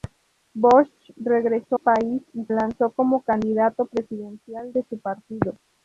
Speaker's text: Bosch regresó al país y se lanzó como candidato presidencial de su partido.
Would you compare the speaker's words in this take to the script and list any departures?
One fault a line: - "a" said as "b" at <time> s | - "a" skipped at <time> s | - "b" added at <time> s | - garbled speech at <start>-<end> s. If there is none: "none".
- "al" skipped at 1.8 s
- "se" skipped at 2.4 s